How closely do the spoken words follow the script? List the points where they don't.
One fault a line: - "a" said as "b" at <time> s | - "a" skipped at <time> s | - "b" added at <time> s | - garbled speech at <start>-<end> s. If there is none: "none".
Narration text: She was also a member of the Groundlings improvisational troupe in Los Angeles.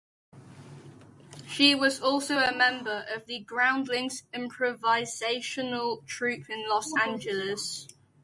none